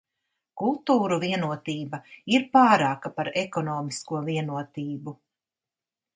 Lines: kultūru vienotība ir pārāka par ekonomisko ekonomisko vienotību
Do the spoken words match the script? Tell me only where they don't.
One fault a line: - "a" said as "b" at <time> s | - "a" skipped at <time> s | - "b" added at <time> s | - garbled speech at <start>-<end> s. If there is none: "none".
- "ekonomisko" skipped at 4.2 s